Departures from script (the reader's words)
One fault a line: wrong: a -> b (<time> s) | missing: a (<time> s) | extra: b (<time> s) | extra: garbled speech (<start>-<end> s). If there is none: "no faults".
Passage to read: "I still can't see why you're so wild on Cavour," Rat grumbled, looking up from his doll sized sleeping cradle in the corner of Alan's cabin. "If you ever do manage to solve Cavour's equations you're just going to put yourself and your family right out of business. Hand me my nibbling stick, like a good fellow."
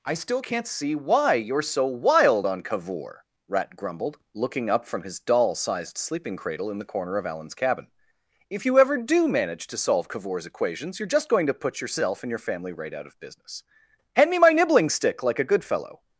no faults